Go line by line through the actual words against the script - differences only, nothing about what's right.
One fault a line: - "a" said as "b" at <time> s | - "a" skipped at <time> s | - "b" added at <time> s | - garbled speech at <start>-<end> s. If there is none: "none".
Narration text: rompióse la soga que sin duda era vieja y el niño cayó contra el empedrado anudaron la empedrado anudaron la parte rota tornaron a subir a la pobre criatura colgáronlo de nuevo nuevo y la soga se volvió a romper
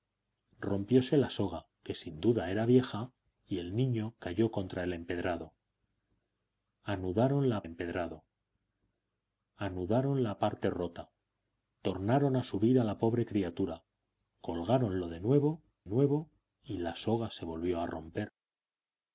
none